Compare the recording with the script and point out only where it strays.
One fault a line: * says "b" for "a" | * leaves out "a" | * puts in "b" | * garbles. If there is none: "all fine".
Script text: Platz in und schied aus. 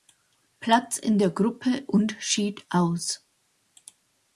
* puts in "der Gruppe"